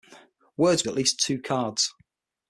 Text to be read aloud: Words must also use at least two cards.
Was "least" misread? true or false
false